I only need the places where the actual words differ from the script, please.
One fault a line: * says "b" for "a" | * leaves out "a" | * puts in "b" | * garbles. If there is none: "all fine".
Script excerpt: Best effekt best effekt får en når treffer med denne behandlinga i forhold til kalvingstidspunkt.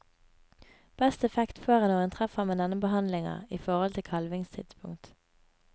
* leaves out "best effekt"
* puts in "en"